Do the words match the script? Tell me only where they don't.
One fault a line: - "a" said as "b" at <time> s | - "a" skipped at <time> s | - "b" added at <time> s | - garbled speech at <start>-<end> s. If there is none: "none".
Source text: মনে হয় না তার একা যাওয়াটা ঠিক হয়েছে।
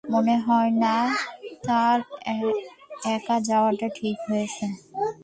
none